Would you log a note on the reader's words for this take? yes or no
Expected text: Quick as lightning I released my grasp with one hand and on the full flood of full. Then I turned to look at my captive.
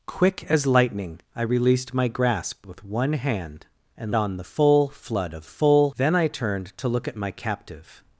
no